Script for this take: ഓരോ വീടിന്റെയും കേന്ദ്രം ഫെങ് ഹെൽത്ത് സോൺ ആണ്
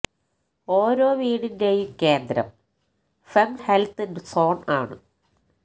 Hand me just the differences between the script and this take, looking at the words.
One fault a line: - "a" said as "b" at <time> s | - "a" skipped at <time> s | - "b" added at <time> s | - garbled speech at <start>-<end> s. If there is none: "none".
none